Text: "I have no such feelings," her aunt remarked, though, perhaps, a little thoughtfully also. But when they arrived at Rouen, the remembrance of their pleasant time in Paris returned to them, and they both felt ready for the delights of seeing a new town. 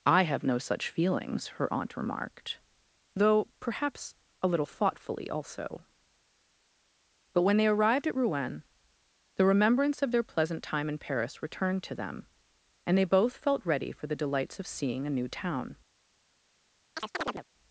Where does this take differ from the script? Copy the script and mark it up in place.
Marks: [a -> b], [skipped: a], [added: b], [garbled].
"I have no such feelings," her aunt remarked, though, perhaps, a little thoughtfully also. But when they arrived at Rouen, the remembrance of their pleasant time in Paris returned to them, and they both felt ready for the delights of seeing a new town.